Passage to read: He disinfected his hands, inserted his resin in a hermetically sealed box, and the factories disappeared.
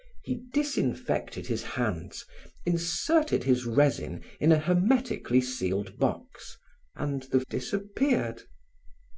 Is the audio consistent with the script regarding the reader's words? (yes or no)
no